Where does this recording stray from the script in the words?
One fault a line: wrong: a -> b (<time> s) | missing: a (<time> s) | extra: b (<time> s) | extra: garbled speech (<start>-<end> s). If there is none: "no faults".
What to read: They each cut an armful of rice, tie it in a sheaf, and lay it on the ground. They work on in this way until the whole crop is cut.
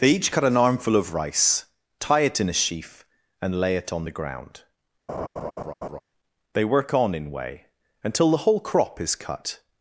missing: this (7.3 s)